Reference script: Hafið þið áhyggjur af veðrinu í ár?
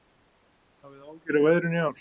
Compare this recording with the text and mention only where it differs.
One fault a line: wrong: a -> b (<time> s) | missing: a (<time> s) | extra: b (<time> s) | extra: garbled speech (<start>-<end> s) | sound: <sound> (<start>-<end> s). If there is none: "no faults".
no faults